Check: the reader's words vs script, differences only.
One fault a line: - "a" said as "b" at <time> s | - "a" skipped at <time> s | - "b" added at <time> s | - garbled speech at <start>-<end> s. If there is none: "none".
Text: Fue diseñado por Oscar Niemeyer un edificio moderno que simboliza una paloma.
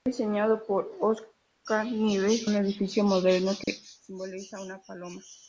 none